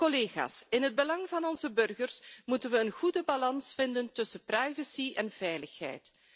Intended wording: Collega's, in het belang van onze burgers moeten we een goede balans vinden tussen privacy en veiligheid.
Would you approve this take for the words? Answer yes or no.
yes